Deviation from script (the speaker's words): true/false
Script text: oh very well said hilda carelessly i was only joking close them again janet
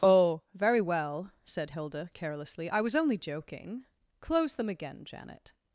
false